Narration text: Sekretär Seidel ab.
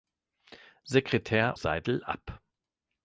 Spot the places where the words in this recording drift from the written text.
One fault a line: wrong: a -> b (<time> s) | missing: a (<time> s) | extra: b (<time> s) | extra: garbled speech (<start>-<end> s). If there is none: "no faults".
no faults